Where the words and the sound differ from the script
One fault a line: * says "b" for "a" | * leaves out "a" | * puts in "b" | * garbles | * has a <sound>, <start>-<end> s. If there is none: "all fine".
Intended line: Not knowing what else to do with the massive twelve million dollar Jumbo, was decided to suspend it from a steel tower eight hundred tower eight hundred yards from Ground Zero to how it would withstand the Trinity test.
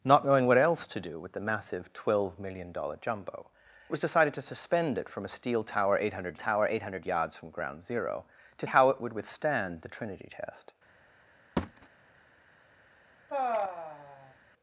* has a thud, 11.6-11.9 s
* has a sigh, 13.3-14.3 s